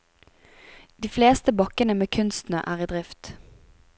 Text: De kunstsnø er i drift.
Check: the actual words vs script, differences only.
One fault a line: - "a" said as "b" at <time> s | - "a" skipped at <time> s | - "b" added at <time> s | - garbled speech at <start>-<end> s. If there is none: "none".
- "fleste bakkene med" added at 1.1 s